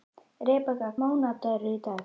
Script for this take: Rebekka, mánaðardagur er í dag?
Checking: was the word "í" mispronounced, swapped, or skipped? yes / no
no